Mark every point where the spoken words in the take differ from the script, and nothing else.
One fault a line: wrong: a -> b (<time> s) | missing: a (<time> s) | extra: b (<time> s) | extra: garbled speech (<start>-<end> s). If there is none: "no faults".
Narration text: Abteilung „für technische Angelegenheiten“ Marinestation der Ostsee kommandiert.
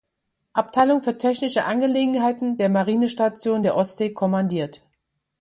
extra: der (2.6 s)